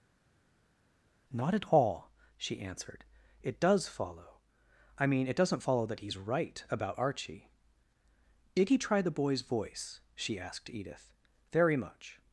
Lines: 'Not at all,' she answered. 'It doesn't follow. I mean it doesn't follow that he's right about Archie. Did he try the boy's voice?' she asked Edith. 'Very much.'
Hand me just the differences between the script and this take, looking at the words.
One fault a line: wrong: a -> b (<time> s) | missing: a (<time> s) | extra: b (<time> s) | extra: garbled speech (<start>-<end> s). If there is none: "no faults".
wrong: doesn't -> does (3.6 s)